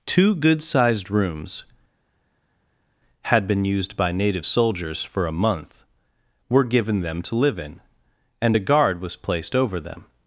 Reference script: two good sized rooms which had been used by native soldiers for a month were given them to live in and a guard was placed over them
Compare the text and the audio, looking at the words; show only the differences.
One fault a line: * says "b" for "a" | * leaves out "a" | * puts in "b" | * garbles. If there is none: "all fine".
* leaves out "which"